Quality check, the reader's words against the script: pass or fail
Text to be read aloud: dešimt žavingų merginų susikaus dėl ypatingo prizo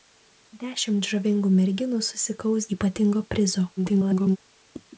fail